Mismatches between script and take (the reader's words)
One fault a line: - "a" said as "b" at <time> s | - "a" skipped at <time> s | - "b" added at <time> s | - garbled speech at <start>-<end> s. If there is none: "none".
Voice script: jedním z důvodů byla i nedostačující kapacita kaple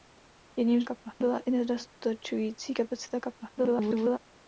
- "důvodů" said as "kaple" at 0.8 s
- garbled speech at 3.6-4.2 s